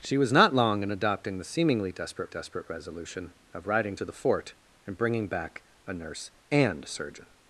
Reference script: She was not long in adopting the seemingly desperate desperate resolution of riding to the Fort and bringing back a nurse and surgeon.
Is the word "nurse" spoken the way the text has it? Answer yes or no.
yes